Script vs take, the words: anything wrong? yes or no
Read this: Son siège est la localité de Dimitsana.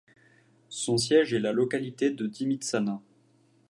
no